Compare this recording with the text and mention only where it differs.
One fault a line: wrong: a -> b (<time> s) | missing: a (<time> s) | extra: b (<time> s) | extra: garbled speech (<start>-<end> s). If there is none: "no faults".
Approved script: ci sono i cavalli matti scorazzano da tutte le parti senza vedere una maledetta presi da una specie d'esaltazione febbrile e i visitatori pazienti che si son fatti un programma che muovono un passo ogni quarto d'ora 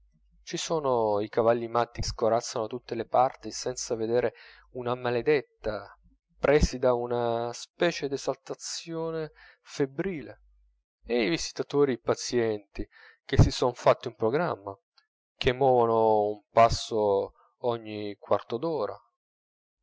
no faults